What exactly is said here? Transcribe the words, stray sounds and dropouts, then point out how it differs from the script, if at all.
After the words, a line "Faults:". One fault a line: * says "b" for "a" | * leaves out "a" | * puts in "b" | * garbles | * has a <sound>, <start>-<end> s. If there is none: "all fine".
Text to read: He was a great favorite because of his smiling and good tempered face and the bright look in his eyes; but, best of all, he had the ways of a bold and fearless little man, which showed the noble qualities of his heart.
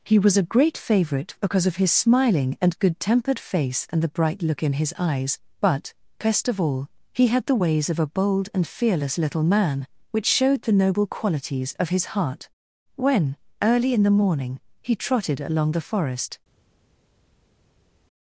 He was a great favorite because of his smiling and good tempered face and the bright look in his eyes; but, best of all, he had the ways of a bold and fearless little man, which showed the noble qualities of his heart. When, early in the morning, he trotted along the forest
Faults:
* puts in "When early in the morning he trotted along the forest"